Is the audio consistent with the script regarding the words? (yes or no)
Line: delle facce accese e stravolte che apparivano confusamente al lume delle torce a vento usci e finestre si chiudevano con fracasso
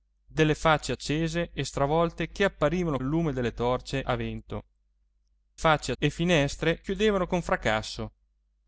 no